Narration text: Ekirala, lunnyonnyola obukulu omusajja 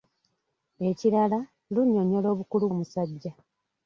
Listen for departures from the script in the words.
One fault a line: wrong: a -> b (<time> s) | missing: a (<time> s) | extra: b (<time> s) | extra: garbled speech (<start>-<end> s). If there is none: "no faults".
no faults